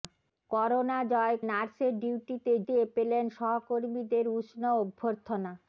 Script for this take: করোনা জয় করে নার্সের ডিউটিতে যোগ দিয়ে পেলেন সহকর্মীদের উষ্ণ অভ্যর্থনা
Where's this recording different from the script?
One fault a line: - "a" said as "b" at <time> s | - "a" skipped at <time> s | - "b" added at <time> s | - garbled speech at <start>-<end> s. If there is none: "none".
- "করে" skipped at 1.4 s
- "যোগ" skipped at 2.5 s